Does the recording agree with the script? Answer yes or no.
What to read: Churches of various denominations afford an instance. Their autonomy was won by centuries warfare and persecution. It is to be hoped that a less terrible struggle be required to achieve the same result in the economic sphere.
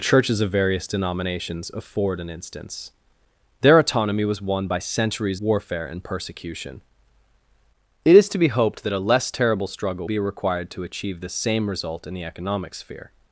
yes